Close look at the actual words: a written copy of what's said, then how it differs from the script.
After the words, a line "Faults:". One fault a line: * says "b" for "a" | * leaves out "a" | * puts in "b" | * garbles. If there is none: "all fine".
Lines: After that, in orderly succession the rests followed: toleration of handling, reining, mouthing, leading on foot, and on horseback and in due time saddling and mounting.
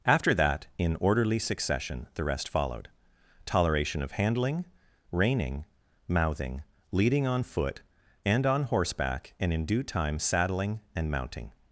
After that, in orderly succession the rest followed: toleration of handling, reining, mouthing, leading on foot, and on horseback and in due time saddling and mounting.
Faults:
* says "rest" for "rests"